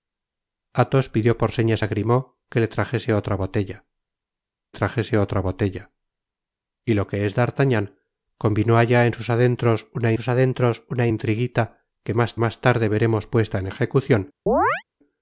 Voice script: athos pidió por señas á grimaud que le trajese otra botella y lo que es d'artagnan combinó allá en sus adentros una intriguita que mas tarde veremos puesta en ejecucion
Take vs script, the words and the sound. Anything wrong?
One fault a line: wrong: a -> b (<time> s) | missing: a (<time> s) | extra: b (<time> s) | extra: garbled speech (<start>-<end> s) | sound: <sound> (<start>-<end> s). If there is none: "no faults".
extra: trajese otra botella (4.8 s)
extra: sus adentros una (10.1 s)
extra: mas (12.4 s)
sound: chirp (14.5-14.8 s)